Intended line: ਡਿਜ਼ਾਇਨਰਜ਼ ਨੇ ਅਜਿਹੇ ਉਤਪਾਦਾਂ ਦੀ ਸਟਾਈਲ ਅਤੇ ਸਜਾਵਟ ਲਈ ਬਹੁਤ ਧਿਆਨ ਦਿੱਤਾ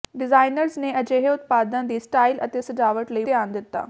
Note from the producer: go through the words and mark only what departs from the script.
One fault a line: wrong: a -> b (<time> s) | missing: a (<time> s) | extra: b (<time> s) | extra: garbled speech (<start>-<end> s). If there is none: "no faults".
missing: ਬਹੁਤ (3.2 s)